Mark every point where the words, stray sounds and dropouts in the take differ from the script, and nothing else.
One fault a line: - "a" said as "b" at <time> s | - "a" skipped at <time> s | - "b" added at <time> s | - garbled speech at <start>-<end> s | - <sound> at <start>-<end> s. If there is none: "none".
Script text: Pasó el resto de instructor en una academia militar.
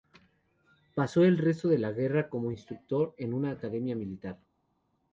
- "la guerra como" added at 1.8 s